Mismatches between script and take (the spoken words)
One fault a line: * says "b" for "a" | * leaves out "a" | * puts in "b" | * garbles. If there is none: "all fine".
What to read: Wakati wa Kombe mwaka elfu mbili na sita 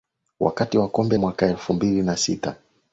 all fine